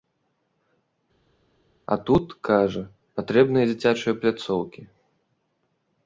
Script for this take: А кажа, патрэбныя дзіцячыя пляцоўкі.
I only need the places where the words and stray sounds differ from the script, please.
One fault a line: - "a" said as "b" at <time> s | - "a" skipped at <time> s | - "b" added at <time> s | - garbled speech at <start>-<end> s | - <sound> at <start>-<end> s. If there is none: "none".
- "тут" added at 2.1 s